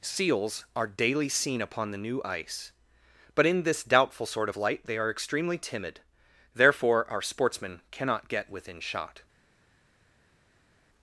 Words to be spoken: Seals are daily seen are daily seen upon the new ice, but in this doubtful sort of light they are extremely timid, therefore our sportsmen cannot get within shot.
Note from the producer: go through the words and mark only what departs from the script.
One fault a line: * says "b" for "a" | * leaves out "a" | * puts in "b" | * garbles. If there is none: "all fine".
* leaves out "are daily seen"